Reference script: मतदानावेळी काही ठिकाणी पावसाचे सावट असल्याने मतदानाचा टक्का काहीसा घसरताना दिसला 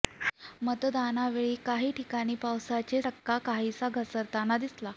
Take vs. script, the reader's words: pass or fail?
fail